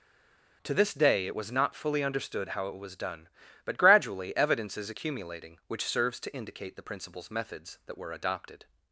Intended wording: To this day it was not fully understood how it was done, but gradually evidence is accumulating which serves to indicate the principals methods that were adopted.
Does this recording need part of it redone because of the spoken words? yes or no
no